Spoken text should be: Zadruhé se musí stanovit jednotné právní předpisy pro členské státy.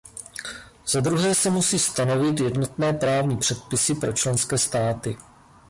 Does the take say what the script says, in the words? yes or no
yes